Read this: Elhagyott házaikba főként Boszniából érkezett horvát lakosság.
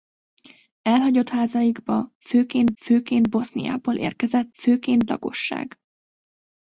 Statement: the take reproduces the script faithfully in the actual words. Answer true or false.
false